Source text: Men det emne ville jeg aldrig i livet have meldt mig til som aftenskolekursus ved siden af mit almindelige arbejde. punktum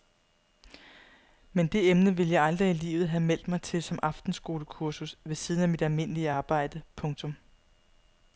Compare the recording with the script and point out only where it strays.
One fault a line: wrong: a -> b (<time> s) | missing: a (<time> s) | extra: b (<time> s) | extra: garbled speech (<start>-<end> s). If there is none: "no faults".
no faults